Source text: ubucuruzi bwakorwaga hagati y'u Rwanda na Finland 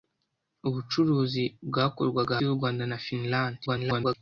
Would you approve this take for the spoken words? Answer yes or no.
no